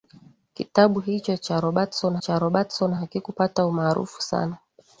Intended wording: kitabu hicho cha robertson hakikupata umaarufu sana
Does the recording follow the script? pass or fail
fail